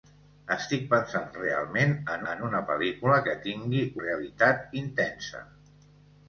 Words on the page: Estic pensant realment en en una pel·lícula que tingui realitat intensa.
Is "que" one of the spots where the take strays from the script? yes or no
no